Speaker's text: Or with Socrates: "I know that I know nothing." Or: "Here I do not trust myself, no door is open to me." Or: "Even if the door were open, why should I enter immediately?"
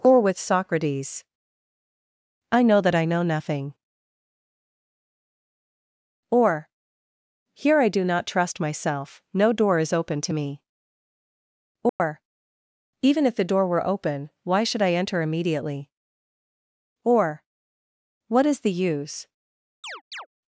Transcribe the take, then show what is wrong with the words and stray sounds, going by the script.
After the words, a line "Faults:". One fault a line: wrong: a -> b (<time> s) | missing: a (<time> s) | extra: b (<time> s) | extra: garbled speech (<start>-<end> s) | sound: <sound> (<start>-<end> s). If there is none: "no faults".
Or with Socrates: "I know that I know nothing." Or: "Here I do not trust myself, no door is open to me." Or: "Even if the door were open, why should I enter immediately?" Or: "What is the use
Faults:
sound: dropout (11.9-12.0 s)
extra: Or What is the use (17.0 s)
sound: chirp (19.8-20.3 s)